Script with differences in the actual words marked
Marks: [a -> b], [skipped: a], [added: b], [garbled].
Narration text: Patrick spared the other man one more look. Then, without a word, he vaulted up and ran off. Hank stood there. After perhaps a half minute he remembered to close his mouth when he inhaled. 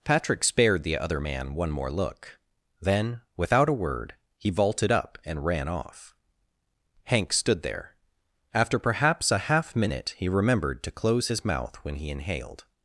Patrick spared the other man one more look. Then, without a word, he vaulted up and ran off. Hank stood there. After perhaps a half minute he remembered to close his mouth when he inhaled.